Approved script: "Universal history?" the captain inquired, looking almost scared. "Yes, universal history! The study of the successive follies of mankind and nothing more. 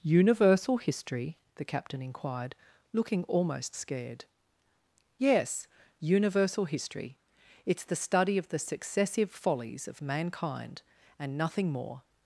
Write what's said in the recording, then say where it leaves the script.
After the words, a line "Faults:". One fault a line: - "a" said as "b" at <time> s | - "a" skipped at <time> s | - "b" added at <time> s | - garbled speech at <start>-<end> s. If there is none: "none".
"Universal history?" the captain inquired, looking almost scared. "Yes, universal history! It's the study of the successive follies of mankind and nothing more.
Faults:
- "It's" added at 7.7 s